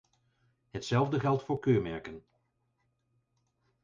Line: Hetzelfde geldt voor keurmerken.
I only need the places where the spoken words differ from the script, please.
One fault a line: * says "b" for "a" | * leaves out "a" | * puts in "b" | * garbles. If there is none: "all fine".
all fine